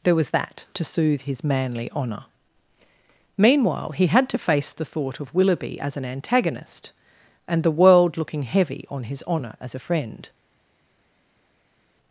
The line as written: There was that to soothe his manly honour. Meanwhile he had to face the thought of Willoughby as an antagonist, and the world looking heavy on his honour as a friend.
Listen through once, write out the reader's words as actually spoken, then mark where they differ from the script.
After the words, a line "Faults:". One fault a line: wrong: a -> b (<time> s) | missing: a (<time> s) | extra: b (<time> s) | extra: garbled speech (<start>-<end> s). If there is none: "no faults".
There was that to soothe his manly honour. Meanwhile he had to face the thought of Willoughby as an antagonist, and the world looking heavy on his honour as a friend.
Faults:
no faults